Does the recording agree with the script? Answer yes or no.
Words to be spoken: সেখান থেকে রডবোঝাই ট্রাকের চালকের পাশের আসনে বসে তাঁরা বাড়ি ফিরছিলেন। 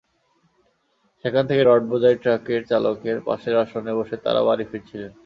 yes